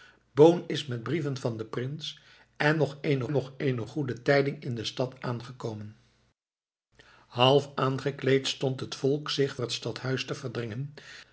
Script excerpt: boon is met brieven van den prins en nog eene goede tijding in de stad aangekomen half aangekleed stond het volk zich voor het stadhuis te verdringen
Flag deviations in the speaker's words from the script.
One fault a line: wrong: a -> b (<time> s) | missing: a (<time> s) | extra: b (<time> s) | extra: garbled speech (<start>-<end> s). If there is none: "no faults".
extra: nog eene (3.3 s)
missing: voor (9.6 s)